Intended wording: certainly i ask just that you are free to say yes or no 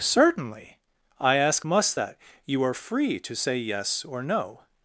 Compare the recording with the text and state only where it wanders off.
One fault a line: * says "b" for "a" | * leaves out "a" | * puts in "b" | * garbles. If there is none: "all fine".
* says "must" for "just"